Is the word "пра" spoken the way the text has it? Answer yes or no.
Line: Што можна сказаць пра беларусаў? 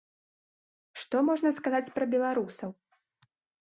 yes